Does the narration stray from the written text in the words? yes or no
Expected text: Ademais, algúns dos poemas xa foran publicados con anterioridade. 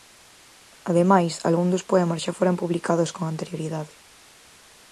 no